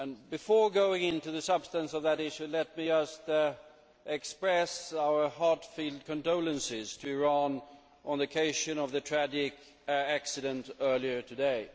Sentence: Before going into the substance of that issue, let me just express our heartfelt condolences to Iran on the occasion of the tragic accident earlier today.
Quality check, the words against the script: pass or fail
pass